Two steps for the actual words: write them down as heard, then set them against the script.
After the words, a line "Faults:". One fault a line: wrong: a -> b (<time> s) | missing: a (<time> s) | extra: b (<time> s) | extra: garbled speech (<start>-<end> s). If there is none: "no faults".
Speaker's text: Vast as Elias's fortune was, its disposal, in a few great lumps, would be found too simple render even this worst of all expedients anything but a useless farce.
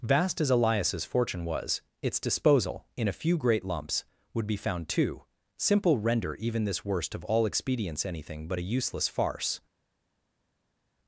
Vast as Elias's fortune was, its disposal, in a few great lumps, would be found too simple render even this worst of all expedients anything but a useless farce.
Faults:
no faults